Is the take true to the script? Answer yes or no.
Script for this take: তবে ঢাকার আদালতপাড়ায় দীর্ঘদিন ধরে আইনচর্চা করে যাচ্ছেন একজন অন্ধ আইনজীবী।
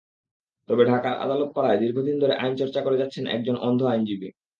yes